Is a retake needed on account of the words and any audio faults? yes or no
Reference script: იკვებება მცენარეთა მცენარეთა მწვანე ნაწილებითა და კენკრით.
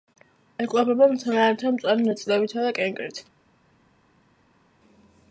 yes